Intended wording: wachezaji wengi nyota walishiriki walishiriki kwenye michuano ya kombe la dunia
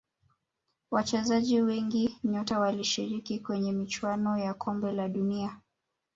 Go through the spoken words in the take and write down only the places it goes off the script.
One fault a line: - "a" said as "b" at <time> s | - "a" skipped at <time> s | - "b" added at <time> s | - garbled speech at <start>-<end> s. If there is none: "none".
- "walishiriki" skipped at 3.4 s